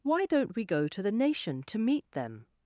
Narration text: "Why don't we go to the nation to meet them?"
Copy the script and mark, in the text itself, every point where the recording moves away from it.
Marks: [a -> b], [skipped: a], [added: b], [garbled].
"Why don't we go to the nation to meet them?"